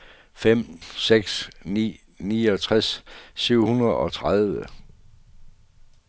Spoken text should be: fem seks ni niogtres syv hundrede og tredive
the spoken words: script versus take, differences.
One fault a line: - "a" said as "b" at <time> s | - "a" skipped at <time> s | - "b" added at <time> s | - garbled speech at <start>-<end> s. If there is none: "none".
none